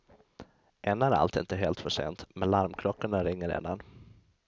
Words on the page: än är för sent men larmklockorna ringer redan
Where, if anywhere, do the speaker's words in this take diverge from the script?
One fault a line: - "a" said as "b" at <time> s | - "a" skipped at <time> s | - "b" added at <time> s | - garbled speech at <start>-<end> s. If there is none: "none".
- "allt inte helt" added at 1.1 s